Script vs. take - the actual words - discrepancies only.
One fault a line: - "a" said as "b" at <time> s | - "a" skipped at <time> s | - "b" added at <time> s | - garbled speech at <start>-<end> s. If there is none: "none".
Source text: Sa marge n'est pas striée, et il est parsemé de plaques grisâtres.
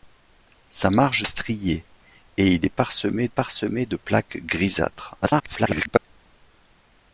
- "n'est pas" skipped at 1.3 s
- "parsemé" added at 3.3 s
- garbled speech at 5.2-6.1 s